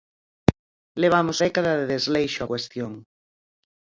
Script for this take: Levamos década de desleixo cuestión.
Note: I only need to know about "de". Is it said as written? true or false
true